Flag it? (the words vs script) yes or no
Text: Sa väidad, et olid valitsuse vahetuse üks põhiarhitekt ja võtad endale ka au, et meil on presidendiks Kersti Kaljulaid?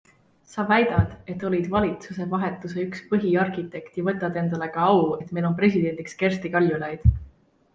no